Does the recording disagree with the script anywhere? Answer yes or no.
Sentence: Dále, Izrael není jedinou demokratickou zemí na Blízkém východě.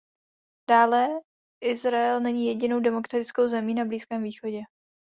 no